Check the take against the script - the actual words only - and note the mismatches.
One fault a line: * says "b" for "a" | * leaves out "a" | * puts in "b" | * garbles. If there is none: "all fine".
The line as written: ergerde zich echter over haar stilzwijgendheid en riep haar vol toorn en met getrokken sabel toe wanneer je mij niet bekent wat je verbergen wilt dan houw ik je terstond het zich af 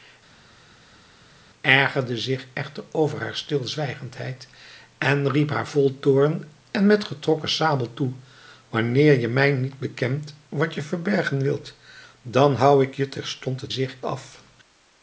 all fine